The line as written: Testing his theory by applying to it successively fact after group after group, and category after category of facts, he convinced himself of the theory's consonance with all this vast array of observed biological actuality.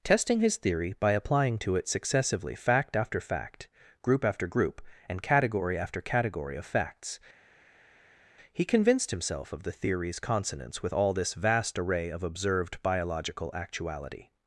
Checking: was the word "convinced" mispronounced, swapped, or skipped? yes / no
no